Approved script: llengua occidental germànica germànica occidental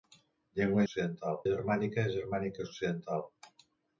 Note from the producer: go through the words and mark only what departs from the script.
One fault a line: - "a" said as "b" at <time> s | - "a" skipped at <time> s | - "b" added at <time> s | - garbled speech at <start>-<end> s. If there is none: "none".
none